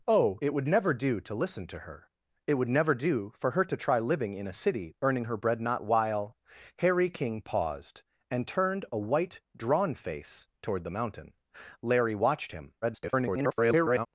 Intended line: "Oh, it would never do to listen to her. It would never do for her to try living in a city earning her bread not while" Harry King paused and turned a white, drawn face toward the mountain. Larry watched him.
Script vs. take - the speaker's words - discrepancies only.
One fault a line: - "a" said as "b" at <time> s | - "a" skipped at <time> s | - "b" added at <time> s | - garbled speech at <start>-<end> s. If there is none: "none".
- garbled speech at 12.8-14.1 s